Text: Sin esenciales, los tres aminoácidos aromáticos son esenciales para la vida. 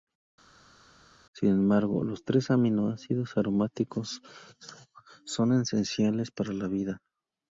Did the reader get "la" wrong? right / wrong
right